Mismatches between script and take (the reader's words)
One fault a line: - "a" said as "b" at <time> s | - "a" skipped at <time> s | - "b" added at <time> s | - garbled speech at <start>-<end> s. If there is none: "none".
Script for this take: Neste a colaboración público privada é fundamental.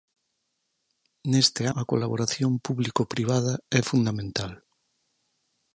none